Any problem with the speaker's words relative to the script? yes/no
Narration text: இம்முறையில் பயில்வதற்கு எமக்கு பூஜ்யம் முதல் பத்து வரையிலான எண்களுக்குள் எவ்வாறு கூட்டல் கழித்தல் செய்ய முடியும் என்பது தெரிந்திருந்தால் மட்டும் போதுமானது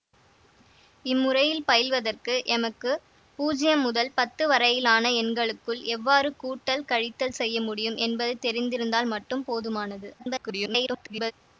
yes